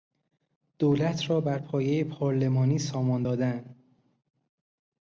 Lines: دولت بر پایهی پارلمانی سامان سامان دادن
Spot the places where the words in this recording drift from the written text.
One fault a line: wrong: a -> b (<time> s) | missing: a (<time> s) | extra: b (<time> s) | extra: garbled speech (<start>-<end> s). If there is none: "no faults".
extra: را (1.3 s)
missing: سامان (3.2 s)